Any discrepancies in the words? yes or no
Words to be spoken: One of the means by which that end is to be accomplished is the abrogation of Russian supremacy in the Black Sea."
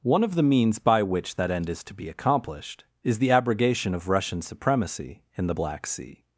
no